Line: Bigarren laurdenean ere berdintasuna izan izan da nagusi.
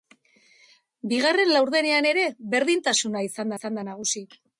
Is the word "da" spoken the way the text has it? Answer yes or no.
yes